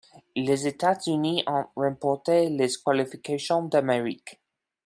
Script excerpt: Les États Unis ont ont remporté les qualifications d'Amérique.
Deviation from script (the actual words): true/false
true